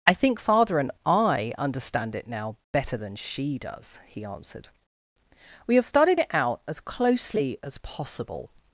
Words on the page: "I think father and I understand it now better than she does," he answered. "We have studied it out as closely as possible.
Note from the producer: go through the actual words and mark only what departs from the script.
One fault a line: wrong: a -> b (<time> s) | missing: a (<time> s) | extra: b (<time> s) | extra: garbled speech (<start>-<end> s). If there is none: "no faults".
no faults